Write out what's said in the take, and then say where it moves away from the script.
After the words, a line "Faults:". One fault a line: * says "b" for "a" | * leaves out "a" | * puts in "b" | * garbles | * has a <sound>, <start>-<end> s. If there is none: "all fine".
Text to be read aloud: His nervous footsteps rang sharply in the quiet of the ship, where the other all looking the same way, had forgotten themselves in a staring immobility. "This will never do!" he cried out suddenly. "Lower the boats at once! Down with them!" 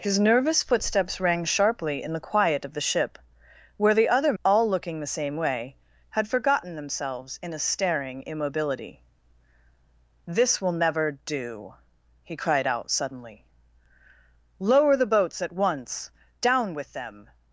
His nervous footsteps rang sharply in the quiet of the ship, where the other all looking the same way, had forgotten themselves in a staring immobility. "This will never do!" he cried out suddenly. "Lower the boats at once! Down with them!"
Faults:
all fine